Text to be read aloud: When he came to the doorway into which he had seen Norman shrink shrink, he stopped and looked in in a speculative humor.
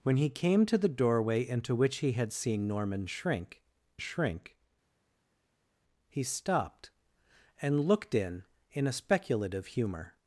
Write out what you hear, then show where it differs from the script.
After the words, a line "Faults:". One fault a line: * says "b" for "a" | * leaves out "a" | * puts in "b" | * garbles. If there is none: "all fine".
When he came to the doorway into which he had seen Norman shrink shrink, he stopped and looked in in a speculative humor.
Faults:
all fine